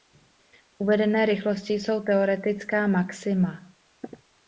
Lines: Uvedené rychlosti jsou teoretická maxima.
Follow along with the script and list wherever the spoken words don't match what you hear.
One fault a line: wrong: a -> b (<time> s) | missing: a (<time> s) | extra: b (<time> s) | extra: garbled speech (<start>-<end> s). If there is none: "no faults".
no faults